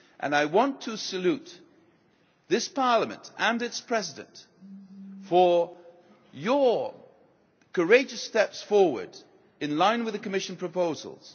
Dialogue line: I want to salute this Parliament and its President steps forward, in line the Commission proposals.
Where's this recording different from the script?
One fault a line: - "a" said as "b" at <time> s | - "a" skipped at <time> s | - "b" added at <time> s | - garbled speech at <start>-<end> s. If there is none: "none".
- "for your courageous" added at 5.3 s
- "with" added at 10.0 s